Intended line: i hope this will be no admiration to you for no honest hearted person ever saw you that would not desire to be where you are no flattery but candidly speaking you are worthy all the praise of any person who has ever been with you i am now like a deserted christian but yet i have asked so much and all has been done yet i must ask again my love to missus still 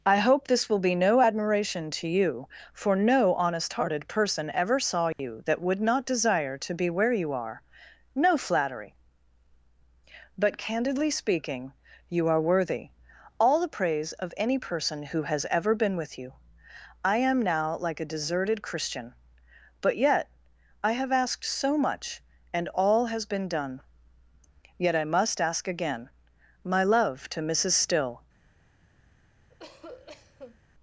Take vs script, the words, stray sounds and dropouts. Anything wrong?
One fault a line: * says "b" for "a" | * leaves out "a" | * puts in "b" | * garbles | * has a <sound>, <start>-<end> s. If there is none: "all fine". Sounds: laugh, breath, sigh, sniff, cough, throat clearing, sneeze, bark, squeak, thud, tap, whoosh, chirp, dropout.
* has a dropout, 5.1-5.2 s
* has a cough, 29.5-30.6 s